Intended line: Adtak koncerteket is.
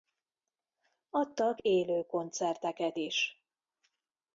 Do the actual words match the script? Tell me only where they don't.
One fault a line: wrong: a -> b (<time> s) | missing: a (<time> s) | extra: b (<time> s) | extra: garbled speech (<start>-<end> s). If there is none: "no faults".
extra: élő (1.6 s)